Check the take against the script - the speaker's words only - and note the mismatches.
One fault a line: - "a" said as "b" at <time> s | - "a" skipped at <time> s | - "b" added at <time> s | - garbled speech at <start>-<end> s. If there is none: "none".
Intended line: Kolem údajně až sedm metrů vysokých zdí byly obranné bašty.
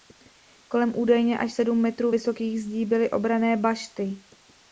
none